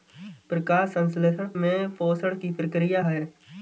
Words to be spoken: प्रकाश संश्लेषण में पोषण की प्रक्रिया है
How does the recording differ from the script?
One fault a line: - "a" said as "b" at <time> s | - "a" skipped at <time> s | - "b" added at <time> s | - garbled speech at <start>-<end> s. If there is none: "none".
none